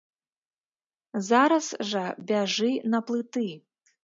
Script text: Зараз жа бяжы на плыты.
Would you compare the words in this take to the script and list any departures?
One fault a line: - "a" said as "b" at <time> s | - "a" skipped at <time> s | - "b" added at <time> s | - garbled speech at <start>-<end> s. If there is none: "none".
none